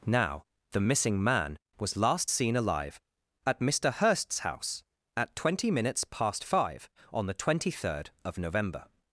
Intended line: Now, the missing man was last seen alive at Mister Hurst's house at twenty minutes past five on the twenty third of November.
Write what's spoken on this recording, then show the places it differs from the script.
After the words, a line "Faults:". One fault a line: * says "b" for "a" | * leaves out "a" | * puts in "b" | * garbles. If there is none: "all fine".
Now, the missing man was last seen alive at Mister Hurst's house at twenty minutes past five on the twenty third of November.
Faults:
all fine